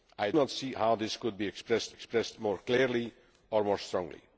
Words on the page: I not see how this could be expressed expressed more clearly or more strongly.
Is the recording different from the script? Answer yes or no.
no